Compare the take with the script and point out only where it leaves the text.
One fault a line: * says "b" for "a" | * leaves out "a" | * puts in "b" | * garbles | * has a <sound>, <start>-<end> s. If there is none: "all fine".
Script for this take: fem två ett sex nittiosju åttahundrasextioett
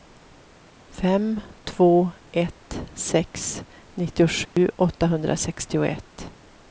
* has a dropout, 4.5-4.6 s